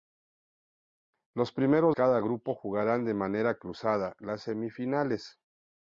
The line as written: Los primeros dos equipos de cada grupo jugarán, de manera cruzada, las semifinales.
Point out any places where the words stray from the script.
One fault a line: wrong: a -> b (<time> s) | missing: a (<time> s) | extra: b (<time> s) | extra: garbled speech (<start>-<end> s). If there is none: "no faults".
missing: dos equipos de (1.9 s)